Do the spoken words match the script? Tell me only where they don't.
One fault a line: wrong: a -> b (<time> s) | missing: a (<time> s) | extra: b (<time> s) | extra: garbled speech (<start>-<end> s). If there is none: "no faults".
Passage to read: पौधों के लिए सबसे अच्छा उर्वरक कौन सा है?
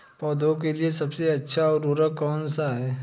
no faults